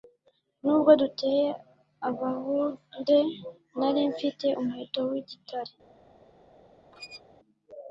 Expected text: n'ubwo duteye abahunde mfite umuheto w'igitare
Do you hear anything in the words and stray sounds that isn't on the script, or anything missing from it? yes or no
yes